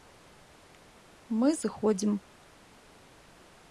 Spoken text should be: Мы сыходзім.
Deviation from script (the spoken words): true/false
false